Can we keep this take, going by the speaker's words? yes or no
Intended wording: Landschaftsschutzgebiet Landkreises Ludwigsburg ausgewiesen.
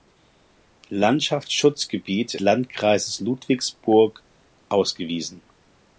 yes